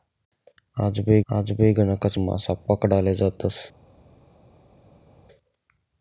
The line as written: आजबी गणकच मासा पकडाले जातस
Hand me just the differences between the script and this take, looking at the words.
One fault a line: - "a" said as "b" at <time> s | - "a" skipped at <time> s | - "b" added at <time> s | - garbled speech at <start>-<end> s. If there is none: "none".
- "आजबी" added at 1.3 s